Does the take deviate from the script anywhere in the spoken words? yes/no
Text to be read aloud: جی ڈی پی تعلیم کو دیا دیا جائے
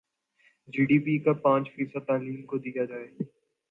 yes